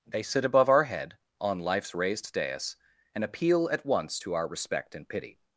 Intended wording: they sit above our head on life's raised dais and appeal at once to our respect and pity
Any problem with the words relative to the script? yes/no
no